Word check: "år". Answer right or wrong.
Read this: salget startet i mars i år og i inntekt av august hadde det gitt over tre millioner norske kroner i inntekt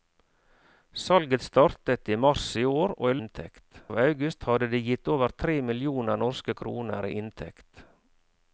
right